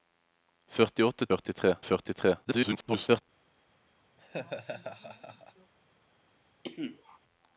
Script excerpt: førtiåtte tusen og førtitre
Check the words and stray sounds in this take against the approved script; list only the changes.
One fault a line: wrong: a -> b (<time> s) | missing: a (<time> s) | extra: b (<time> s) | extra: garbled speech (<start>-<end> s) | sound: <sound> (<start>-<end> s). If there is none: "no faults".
wrong: tusen -> førtitre (1.3 s)
extra: garbled speech (2.4-3.2 s)
sound: laugh (4.2-5.7 s)
sound: cough (6.6-7.2 s)